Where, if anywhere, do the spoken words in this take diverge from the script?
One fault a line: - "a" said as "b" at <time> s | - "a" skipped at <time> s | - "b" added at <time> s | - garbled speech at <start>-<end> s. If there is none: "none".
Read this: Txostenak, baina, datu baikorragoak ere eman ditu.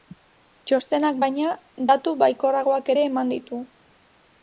none